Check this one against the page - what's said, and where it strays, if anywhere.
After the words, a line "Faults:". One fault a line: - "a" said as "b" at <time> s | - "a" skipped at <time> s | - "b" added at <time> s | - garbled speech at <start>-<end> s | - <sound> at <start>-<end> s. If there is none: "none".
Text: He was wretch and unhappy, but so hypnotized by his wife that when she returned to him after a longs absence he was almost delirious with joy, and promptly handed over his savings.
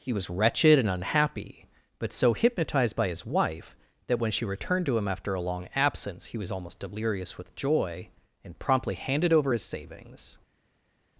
He was wretched and unhappy, but so hypnotized by his wife that when she returned to him after a long absence he was almost delirious with joy, and promptly handed over his savings.
Faults:
- "wretch" said as "wretched" at 0.3 s
- "longs" said as "long" at 5.4 s